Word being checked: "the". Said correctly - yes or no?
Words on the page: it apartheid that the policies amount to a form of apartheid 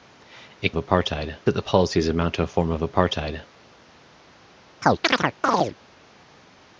yes